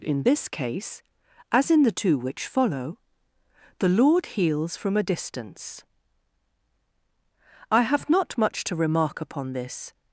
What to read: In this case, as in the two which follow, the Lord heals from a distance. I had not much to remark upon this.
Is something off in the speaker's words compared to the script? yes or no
yes